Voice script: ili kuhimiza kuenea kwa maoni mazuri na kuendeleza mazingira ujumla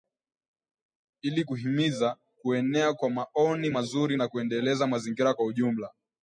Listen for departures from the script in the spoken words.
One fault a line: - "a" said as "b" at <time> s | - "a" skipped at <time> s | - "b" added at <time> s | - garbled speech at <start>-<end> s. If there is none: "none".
- "kwa" added at 5.3 s